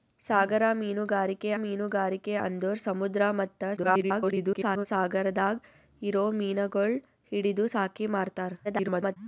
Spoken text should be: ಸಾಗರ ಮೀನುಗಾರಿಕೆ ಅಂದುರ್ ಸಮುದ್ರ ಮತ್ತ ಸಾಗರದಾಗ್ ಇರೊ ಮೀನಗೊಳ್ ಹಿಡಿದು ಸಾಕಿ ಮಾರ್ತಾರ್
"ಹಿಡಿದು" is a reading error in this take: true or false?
false